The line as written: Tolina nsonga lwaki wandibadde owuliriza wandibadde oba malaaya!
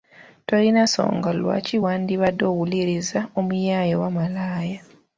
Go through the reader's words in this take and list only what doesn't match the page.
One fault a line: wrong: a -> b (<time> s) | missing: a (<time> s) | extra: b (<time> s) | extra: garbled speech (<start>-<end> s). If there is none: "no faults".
wrong: wandibadde -> omuyaaye (3.4 s)